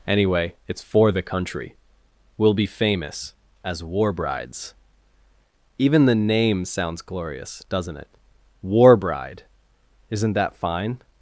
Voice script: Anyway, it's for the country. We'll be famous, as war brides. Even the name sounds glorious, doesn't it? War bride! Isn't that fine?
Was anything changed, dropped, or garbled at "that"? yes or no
no